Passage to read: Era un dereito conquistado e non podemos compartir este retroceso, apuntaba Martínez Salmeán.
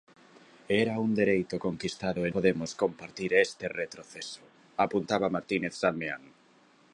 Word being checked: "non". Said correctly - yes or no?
no